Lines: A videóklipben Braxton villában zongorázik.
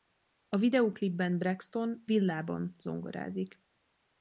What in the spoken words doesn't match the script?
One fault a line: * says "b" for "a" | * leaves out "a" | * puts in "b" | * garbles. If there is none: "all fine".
all fine